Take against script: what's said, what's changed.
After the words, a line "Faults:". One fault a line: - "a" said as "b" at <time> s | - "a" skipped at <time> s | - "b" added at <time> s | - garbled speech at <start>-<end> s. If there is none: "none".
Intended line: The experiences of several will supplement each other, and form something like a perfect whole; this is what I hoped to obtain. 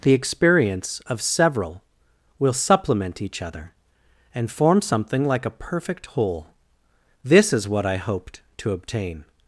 The experience of several will supplement each other, and form something like a perfect whole; this is what I hoped to obtain.
Faults:
- "experiences" said as "experience" at 0.1 s